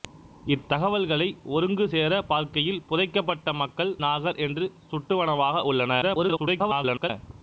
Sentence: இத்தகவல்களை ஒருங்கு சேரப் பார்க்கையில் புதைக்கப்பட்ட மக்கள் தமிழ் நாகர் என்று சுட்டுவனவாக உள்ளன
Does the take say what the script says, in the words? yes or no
no